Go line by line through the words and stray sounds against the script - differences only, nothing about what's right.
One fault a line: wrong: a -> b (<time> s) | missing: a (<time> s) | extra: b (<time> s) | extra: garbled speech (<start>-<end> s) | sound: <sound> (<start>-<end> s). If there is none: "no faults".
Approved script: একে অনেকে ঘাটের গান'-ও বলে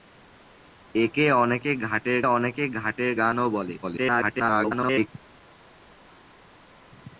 extra: অনেকে ঘাটের (2.3 s)
extra: garbled speech (3.8-5.1 s)